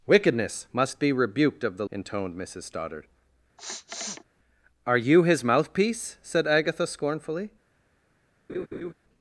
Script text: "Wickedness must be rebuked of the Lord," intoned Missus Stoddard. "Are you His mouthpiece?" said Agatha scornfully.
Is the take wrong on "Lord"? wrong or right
wrong